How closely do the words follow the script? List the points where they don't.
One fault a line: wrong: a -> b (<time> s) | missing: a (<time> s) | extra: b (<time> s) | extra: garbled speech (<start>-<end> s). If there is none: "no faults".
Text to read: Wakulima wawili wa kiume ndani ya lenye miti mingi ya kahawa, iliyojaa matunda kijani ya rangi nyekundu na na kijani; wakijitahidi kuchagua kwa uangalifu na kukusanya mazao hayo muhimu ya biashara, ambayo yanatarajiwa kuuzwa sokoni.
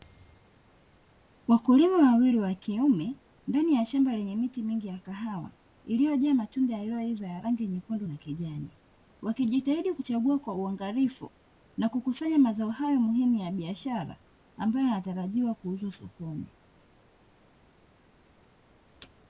extra: shamba (3.9 s)
wrong: kijani -> yaliyoiva (6.8 s)
missing: na (8.2 s)